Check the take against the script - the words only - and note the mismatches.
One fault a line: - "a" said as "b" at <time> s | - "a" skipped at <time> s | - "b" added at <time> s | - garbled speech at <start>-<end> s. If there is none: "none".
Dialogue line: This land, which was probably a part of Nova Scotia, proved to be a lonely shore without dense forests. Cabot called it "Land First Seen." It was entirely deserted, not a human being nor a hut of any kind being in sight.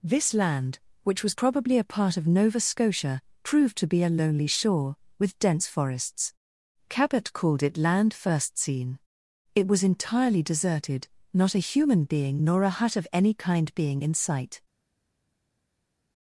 - "without" said as "with" at 5.2 s